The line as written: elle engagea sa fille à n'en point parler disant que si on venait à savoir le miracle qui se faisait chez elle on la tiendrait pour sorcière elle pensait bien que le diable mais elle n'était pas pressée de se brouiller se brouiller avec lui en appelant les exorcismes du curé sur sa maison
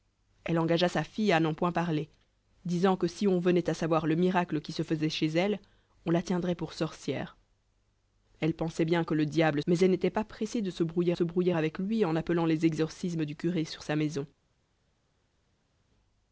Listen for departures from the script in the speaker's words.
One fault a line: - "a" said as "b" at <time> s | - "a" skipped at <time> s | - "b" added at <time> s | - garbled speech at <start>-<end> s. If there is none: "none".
none